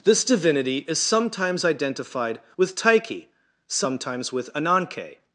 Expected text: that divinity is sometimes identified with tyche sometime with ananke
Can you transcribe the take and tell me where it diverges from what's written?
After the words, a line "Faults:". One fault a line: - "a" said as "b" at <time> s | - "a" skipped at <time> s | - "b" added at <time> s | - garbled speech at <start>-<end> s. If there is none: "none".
this divinity is sometimes identified with tyche sometimes with ananke
Faults:
- "that" said as "this" at 0.0 s
- "sometime" said as "sometimes" at 3.7 s